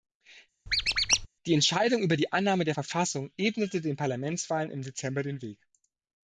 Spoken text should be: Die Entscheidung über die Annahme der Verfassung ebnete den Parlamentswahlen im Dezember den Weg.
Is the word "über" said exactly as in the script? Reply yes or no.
yes